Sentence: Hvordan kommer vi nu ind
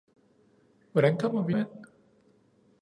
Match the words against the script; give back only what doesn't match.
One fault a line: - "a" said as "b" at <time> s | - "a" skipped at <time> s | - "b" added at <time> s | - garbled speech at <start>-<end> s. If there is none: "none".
- "nu" skipped at 1.5 s